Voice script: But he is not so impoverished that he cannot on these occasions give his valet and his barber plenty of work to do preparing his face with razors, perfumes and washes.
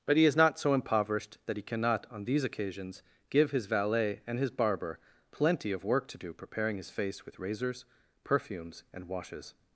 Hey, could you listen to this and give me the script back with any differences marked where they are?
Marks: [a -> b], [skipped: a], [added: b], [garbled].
But he is not so impoverished that he cannot on these occasions give his valet and his barber plenty of work to do preparing his face with razors, perfumes and washes.